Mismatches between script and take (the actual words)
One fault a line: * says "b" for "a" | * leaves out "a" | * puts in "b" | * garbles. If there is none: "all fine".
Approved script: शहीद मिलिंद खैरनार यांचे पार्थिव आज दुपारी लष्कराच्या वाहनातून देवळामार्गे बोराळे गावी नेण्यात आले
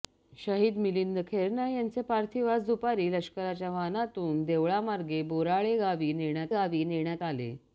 * puts in "गावी नेण्यात"